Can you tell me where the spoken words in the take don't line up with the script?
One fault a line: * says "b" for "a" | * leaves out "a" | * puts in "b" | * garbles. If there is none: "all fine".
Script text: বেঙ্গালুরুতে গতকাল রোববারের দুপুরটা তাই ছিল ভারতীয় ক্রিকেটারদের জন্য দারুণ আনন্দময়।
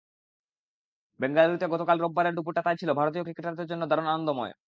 all fine